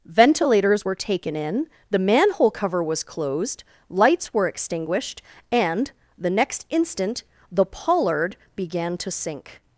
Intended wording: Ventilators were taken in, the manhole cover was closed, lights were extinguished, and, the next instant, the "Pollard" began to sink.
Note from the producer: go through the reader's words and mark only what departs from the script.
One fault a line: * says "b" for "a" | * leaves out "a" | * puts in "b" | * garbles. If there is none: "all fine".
all fine